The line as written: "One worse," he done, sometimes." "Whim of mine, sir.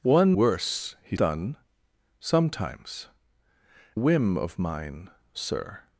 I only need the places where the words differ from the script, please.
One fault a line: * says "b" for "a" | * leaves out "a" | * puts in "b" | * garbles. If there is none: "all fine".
all fine